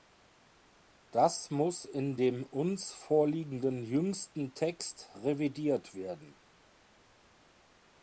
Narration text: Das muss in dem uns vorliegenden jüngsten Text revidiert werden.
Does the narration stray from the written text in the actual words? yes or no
no